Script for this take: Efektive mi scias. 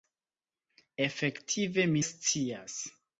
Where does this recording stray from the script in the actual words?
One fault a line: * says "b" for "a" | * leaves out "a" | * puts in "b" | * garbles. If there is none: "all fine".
all fine